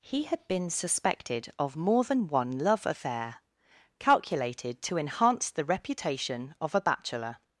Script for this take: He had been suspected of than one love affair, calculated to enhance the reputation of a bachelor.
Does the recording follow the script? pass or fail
fail